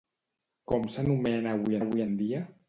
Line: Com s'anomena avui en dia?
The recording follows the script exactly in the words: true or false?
false